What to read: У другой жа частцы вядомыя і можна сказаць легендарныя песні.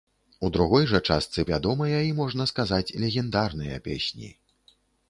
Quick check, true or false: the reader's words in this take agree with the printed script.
true